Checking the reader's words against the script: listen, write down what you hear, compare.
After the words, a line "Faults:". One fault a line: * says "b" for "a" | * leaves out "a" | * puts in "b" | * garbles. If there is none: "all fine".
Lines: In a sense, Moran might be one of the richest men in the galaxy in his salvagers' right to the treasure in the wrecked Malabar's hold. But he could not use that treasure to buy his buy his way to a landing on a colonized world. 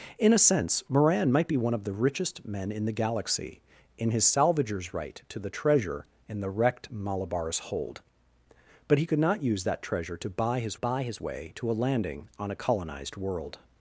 In a sense, Moran might be one of the richest men in the galaxy in his salvagers' right to the treasure in the wrecked Malabar's hold. But he could not use that treasure to buy his buy his way to a landing on a colonized world.
Faults:
all fine